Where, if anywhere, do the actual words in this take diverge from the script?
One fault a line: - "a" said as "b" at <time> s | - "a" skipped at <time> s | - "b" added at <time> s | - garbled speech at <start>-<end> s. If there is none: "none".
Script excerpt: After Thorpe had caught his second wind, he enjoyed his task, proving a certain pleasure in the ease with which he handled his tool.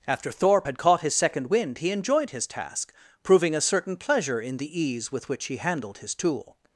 none